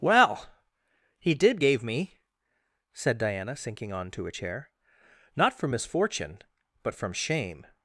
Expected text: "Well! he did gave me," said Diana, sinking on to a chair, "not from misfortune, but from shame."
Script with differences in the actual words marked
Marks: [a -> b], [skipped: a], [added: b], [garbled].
"Well! he did gave me," said Diana, sinking on to a chair, "not from misfortune, but from shame."